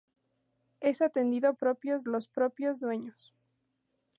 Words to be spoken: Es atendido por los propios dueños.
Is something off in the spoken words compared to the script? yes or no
yes